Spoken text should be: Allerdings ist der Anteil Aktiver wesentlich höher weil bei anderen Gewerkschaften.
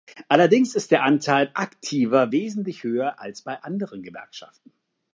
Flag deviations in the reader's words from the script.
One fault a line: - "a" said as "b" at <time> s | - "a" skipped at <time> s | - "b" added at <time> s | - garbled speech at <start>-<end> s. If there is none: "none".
- "weil" said as "als" at 3.2 s